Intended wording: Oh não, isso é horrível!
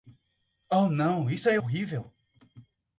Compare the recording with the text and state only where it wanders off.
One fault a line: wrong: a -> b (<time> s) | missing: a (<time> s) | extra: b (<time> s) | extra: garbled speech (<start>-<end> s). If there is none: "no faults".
no faults